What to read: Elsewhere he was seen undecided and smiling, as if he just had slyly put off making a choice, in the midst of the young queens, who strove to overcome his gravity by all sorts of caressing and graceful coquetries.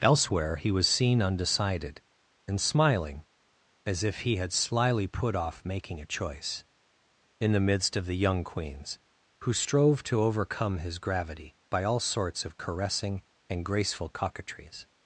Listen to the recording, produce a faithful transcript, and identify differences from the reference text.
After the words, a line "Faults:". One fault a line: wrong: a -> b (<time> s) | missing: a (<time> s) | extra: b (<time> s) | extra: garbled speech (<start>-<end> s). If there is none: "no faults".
Elsewhere he was seen undecided and smiling, as if he had slyly put off making a choice, in the midst of the young queens, who strove to overcome his gravity by all sorts of caressing and graceful coquetries.
Faults:
missing: just (4.4 s)